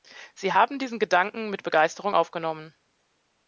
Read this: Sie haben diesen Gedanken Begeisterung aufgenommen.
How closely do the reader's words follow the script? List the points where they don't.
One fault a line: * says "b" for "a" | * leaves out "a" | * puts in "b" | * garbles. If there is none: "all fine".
* puts in "mit"